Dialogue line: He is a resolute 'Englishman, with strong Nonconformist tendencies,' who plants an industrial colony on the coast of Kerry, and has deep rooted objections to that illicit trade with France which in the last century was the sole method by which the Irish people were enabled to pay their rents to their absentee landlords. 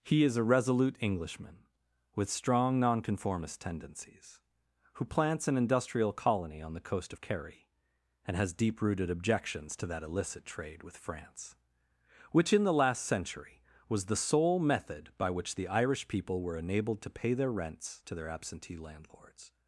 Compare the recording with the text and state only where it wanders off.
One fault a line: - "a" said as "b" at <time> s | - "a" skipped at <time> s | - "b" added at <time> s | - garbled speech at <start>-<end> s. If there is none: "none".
none